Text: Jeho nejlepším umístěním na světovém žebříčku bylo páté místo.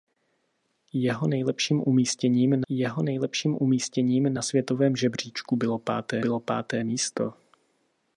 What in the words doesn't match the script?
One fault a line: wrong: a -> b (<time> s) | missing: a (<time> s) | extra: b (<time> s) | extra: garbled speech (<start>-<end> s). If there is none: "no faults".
extra: jeho nejlepším umístěním (2.7 s)
extra: bylo páté (6.2 s)